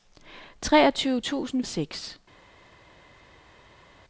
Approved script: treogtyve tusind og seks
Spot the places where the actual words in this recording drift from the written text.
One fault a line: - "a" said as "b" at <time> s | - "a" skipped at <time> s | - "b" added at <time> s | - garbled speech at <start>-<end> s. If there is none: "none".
none